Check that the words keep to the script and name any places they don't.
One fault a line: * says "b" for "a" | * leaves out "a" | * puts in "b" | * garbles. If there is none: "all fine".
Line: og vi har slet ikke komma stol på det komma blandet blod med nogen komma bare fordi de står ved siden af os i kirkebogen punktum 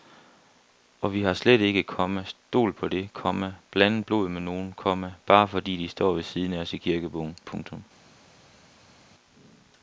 all fine